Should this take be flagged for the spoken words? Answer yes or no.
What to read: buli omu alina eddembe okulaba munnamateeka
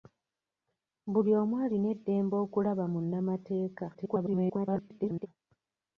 yes